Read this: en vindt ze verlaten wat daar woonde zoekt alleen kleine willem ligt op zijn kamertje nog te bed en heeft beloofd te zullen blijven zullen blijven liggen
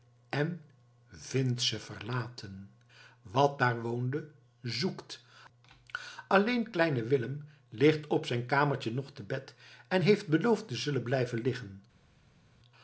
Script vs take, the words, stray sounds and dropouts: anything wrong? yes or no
yes